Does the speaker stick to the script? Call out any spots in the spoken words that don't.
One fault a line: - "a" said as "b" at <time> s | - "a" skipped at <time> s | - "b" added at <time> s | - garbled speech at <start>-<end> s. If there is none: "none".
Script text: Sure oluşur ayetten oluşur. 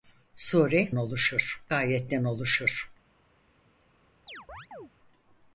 none